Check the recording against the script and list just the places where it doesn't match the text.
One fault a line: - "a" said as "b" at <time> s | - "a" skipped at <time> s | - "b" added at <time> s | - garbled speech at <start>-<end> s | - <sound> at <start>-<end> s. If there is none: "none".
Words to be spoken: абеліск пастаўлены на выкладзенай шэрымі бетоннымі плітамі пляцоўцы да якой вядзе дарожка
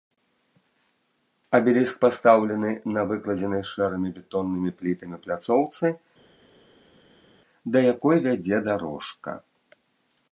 none